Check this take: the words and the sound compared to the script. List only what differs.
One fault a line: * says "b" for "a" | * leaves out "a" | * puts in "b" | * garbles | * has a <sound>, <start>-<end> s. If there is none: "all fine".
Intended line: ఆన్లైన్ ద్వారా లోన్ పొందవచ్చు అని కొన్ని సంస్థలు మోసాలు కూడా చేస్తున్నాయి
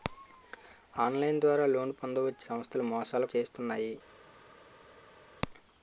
* leaves out "అని కొన్ని"
* leaves out "కూడా"